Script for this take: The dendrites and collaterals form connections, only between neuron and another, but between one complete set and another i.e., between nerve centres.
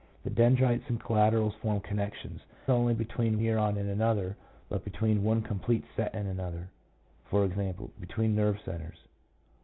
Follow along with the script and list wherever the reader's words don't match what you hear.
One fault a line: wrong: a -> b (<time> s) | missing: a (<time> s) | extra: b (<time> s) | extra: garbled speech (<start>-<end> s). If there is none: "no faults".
no faults